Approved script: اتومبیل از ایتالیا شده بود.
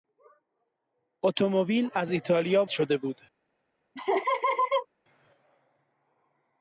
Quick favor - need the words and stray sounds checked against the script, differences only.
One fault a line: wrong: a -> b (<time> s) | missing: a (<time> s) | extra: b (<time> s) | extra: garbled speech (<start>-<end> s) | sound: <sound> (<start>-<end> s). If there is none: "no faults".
sound: laugh (4.0-4.9 s)